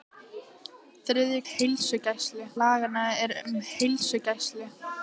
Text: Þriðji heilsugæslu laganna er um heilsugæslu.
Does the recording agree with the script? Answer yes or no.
yes